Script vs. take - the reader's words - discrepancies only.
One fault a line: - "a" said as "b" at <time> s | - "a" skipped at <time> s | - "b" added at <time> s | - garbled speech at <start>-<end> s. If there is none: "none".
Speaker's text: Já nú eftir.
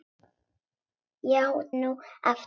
none